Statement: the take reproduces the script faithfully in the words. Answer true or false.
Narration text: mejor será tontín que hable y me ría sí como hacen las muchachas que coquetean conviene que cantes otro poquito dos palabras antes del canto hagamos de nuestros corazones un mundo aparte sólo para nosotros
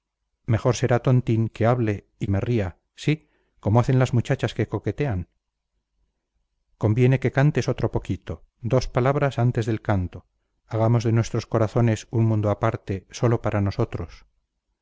true